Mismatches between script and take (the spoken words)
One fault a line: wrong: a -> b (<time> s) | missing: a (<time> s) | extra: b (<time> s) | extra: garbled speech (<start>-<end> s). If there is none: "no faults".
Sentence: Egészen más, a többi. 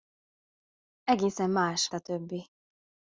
no faults